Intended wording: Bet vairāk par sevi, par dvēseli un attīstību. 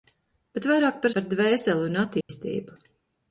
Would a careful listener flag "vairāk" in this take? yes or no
no